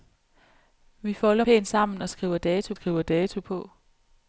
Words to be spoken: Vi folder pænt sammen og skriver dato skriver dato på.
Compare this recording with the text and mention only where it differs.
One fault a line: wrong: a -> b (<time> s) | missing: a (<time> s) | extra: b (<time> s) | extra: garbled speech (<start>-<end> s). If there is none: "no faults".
no faults